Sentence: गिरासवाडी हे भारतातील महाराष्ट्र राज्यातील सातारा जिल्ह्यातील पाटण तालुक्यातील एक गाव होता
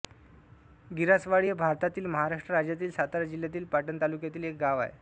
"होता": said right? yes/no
no